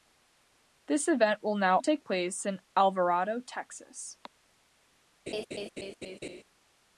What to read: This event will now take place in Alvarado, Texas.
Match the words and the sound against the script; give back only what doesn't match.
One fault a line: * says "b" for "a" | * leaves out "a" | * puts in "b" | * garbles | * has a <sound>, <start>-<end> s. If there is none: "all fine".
* has a laugh, 5.3-6.4 s